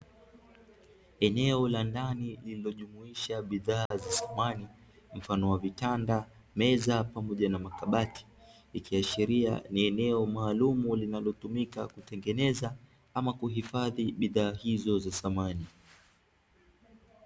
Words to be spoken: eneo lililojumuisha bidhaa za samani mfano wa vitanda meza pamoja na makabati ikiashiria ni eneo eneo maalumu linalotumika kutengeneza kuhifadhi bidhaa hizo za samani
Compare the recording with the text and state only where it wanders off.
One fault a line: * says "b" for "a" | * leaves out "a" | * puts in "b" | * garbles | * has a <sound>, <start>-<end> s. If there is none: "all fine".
* puts in "la ndani"
* has a dropout, 3.9-3.9 s
* leaves out "eneo"
* puts in "ama"